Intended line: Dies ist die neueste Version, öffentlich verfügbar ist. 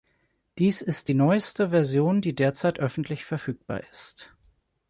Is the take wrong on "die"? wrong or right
right